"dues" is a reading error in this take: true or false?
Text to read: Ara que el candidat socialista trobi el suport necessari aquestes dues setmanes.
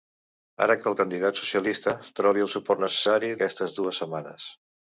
false